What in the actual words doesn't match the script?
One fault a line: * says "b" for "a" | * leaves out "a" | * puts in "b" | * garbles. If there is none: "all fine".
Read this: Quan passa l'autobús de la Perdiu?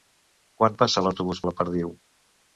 all fine